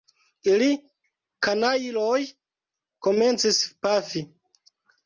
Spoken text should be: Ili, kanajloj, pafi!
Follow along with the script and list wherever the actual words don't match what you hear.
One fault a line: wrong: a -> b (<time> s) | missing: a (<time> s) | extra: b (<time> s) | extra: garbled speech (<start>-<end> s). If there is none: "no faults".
extra: komencis (3.1 s)